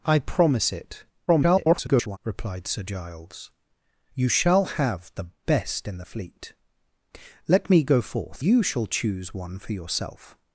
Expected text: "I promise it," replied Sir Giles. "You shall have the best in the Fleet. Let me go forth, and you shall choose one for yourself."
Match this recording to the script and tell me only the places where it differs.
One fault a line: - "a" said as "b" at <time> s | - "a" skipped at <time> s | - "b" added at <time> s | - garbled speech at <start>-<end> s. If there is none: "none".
- garbled speech at 1.3-2.2 s
- "and" skipped at 8.4 s